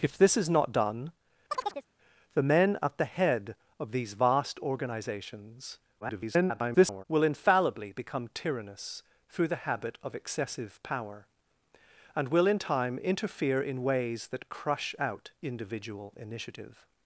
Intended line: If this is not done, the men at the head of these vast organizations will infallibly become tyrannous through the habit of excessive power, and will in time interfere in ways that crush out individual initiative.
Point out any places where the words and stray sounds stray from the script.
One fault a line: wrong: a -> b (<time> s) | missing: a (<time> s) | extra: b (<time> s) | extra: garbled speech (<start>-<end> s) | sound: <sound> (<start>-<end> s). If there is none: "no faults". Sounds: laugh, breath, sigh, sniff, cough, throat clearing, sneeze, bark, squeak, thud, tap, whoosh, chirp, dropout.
sound: chirp (1.5-1.9 s)
extra: garbled speech (6.0-7.0 s)